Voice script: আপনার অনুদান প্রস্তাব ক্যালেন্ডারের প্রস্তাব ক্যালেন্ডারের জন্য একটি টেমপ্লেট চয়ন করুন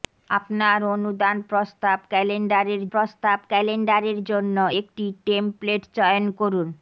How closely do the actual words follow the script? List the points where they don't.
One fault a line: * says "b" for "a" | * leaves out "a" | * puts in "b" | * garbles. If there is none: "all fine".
all fine